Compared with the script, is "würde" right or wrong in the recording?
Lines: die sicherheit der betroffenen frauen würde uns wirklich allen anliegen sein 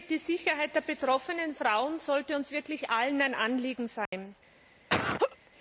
wrong